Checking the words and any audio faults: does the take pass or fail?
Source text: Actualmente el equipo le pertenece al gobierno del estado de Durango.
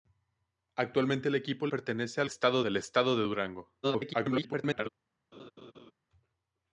fail